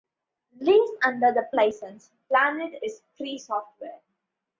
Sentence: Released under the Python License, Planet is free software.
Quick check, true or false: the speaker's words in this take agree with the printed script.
false